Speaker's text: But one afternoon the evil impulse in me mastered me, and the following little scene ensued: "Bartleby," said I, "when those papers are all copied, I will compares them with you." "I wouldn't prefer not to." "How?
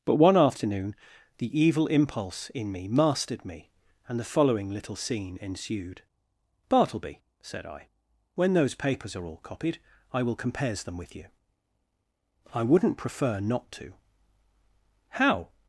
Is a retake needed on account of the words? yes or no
no